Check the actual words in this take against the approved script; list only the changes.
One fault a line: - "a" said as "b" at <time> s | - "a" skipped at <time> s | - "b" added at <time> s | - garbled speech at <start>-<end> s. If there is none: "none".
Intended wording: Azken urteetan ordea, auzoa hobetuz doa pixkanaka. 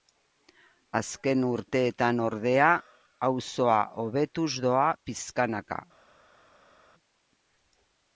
none